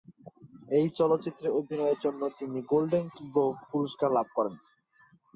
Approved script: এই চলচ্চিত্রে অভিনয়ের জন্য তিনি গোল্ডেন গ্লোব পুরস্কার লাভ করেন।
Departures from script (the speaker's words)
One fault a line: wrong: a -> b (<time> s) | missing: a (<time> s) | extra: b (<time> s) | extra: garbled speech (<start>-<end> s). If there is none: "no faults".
no faults